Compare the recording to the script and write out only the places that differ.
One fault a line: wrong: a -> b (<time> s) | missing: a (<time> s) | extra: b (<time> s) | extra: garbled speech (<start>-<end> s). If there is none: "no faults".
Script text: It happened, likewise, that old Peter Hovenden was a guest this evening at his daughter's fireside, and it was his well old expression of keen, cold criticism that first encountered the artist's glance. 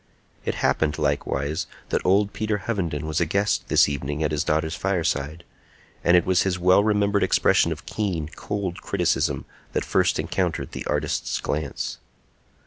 wrong: old -> remembered (6.8 s)